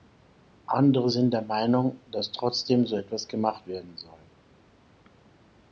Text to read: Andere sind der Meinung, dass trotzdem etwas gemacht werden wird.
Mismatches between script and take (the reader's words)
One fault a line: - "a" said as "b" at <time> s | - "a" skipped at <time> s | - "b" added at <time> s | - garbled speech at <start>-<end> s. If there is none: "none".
- "so" added at 2.9 s
- "wird" said as "soll" at 4.0 s